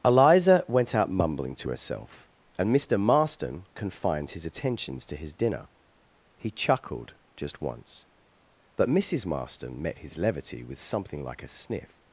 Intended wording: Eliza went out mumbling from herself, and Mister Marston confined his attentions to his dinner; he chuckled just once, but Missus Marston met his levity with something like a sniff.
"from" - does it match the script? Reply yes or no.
no